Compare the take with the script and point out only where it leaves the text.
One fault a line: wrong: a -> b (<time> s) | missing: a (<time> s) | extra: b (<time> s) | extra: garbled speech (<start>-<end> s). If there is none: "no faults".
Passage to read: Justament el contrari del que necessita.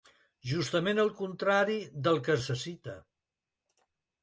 no faults